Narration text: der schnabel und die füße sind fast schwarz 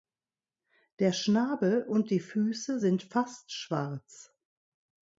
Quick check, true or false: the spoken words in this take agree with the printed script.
true